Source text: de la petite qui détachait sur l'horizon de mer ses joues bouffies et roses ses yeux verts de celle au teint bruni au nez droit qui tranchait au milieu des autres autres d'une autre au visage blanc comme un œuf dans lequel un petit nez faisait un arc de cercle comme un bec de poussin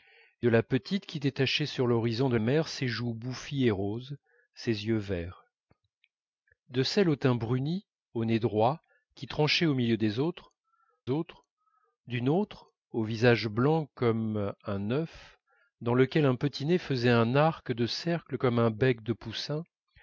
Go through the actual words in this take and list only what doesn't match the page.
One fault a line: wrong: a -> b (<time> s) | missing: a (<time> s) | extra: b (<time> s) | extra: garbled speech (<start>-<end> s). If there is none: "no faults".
no faults